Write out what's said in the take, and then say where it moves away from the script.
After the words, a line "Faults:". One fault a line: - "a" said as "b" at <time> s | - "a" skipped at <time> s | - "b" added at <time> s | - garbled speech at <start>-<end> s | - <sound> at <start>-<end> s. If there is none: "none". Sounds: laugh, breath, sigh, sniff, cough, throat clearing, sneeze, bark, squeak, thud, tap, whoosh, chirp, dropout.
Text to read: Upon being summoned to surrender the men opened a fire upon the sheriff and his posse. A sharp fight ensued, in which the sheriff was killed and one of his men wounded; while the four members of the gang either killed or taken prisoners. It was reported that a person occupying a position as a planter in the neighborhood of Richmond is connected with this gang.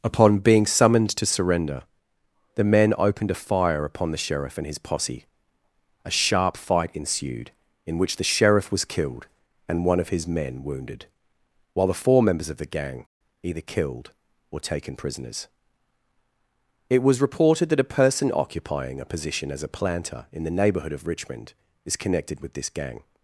Upon being summoned to surrender the men opened a fire upon the sheriff and his posse. A sharp fight ensued, in which the sheriff was killed and one of his men wounded; while the four members of the gang either killed or taken prisoners. It was reported that a person occupying a position as a planter in the neighborhood of Richmond is connected with this gang.
Faults:
none